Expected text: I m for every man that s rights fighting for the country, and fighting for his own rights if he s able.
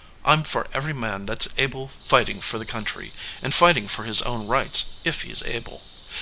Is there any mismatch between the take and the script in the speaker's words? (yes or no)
yes